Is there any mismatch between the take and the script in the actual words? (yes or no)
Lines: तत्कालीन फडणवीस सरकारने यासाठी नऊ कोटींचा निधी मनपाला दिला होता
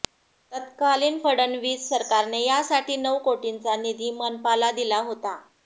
no